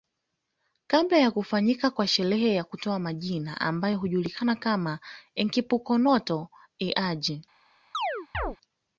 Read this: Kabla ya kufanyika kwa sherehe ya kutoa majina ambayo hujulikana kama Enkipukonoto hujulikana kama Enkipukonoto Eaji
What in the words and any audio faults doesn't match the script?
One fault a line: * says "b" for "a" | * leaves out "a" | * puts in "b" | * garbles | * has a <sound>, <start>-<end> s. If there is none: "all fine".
* leaves out "hujulikana kama Enkipukonoto"
* has a chirp, 7.9-8.6 s